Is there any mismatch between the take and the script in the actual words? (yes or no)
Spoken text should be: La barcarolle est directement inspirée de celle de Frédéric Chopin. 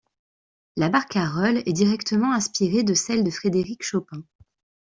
no